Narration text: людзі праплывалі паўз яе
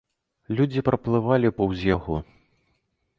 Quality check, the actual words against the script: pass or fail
fail